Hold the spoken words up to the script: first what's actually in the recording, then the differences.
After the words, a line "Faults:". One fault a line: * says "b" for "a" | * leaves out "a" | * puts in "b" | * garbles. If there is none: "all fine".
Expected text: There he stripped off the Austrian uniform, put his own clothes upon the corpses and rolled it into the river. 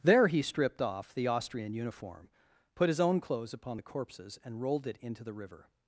There he stripped off the Austrian uniform, put his own clothes upon the corpses and rolled it into the river.
Faults:
all fine